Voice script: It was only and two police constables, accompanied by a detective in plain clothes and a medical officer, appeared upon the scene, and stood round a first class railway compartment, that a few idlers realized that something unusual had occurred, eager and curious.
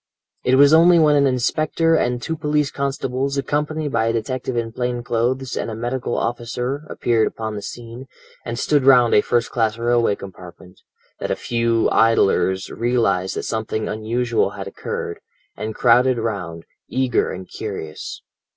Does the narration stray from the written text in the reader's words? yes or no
yes